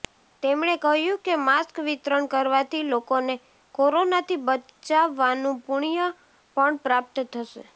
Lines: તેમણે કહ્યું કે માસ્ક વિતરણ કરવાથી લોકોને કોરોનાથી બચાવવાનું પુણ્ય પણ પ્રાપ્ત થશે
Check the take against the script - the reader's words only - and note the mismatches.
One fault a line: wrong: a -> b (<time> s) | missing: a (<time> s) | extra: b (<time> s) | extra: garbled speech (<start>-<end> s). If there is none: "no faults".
no faults